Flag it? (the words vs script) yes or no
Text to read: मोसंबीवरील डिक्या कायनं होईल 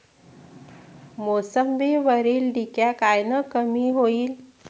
yes